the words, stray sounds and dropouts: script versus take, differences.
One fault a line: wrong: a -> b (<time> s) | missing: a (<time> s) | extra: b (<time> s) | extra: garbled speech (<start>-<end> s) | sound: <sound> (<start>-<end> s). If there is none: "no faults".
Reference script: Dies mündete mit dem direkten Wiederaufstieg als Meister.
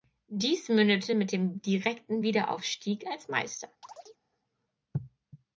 sound: chirp (3.8-4.2 s)